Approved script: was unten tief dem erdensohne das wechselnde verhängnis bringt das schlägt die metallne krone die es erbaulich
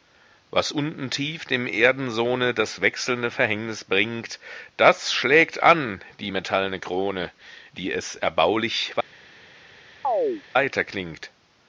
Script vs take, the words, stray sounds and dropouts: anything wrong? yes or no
yes